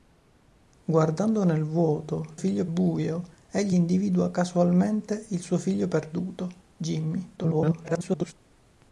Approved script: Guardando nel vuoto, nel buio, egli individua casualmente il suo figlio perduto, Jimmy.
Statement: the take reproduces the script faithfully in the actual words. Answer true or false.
false